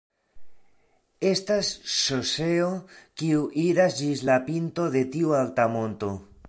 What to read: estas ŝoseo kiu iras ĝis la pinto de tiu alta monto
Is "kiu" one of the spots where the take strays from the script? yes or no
no